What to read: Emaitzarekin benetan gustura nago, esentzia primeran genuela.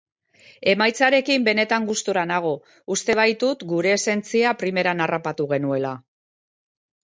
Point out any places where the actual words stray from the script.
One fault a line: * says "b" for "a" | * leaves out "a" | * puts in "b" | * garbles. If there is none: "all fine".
* puts in "uste baitut gure"
* puts in "harrapatu"